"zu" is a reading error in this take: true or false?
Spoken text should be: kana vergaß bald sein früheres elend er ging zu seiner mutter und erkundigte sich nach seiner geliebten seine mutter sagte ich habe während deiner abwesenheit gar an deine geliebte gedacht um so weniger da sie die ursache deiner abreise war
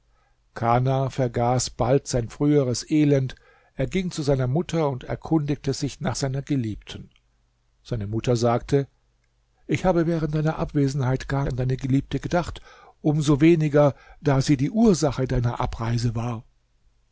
false